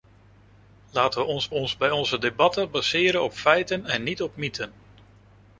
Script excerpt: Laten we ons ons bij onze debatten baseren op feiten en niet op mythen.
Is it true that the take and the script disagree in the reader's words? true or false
false